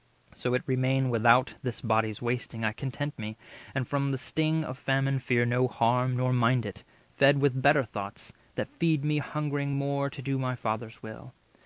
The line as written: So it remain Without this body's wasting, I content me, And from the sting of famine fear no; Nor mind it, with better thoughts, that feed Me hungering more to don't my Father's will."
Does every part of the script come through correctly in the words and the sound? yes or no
no